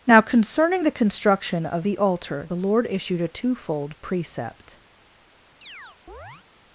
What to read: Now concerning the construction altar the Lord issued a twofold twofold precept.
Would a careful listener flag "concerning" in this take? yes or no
no